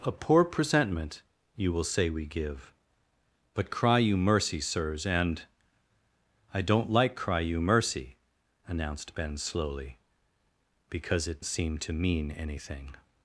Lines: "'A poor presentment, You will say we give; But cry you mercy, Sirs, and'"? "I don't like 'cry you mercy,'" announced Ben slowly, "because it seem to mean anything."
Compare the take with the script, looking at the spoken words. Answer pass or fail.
pass